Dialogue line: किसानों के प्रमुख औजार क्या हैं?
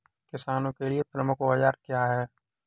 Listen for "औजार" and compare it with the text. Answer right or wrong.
right